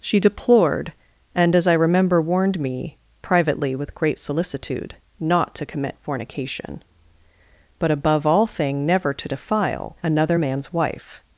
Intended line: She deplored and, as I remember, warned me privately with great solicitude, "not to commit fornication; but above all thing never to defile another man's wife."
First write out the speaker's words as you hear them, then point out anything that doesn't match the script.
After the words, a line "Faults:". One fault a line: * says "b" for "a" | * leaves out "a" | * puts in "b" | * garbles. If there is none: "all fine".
She deplored and, as I remember, warned me privately with great solicitude, "not to commit fornication; but above all thing never to defile another man's wife."
Faults:
all fine